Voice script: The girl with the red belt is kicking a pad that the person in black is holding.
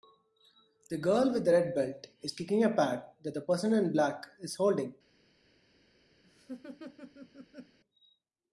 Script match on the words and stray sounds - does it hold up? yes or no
no